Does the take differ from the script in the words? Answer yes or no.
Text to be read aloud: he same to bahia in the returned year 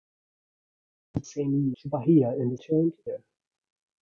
no